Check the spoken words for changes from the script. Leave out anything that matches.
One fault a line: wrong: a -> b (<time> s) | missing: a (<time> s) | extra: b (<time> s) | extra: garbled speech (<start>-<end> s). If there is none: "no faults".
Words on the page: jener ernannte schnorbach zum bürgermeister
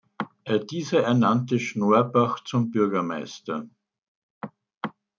wrong: jener -> dieser (0.7 s)